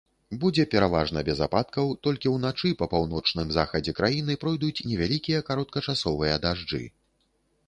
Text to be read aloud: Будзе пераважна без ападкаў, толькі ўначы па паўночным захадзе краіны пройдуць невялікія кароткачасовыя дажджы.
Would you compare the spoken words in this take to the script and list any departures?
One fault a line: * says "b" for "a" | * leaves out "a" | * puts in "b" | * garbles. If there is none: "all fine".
all fine